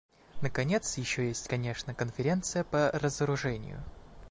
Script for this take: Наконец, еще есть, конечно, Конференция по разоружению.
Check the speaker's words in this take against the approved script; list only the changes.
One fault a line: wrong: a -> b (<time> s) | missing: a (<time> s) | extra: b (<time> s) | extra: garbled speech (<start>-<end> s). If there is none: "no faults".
no faults